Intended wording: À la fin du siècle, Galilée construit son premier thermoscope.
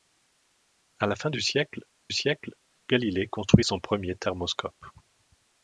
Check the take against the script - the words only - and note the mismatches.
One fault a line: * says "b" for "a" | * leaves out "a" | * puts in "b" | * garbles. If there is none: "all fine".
* puts in "siècle"